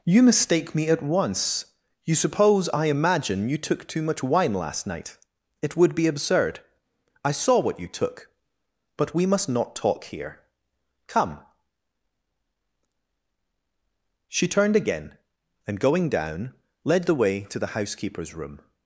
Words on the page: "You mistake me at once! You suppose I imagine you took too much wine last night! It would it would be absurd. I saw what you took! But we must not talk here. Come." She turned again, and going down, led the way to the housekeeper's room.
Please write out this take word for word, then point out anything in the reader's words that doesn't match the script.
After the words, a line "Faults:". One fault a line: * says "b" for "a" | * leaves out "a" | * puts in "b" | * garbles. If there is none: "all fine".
"You mistake me at once! You suppose I imagine you took too much wine last night! It would be absurd. I saw what you took! But we must not talk here. Come." She turned again, and going down, led the way to the housekeeper's room.
Faults:
* leaves out "it would"